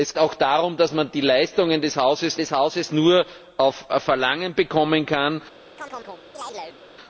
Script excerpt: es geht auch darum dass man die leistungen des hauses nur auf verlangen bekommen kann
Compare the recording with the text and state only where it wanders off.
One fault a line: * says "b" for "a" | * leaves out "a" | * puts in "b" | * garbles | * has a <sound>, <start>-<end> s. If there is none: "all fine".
* leaves out "geht"
* puts in "des hauses"
* has a chirp, 5.8-6.8 s